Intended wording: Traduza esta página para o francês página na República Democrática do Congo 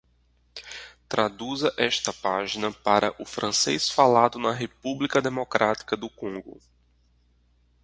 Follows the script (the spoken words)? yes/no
no